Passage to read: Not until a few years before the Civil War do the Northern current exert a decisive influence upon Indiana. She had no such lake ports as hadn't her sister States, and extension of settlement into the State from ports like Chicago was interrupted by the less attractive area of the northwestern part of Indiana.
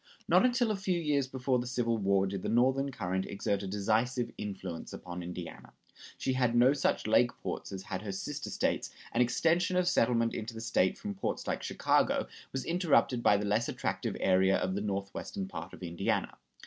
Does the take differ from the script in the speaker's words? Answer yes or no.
yes